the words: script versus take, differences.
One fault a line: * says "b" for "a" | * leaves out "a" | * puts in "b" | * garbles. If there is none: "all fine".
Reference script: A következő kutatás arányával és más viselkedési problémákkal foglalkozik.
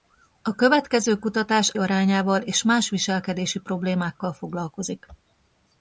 all fine